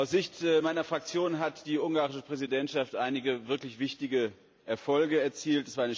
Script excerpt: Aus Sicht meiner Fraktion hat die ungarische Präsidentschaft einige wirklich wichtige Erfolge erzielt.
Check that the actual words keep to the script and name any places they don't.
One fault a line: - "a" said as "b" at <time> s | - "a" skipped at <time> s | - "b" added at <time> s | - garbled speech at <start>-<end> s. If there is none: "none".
none